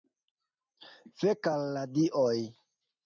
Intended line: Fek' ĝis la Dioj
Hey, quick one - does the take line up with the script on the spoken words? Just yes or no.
no